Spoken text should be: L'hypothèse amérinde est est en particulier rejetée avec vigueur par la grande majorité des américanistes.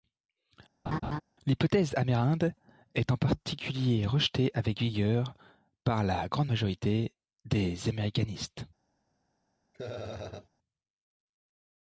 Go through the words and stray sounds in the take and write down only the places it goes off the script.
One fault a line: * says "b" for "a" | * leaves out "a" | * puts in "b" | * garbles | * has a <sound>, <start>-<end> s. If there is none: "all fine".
* has a laugh, 0.9-1.2 s
* leaves out "est"
* has a laugh, 9.7-10.5 s